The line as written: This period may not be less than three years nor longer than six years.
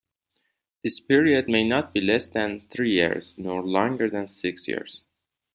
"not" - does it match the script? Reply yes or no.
yes